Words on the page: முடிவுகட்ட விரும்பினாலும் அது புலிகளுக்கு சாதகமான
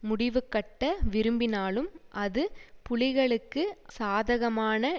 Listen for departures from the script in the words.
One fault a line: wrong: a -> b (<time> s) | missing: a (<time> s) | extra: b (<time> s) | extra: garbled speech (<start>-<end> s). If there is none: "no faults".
no faults